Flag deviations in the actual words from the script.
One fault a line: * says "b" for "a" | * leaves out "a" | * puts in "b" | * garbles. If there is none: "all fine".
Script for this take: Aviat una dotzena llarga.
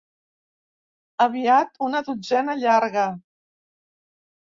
all fine